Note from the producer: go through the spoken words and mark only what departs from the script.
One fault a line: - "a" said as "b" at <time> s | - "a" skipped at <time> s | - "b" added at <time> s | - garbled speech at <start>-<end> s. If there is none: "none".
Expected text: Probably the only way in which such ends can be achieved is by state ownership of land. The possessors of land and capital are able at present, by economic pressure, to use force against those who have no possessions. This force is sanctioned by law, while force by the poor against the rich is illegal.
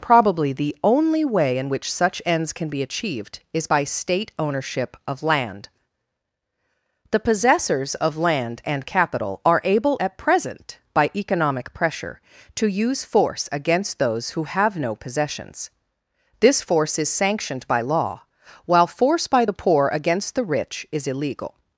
none